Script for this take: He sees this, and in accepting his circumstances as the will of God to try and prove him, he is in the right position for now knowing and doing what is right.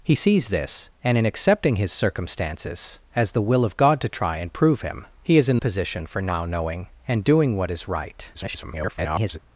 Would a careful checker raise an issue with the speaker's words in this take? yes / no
yes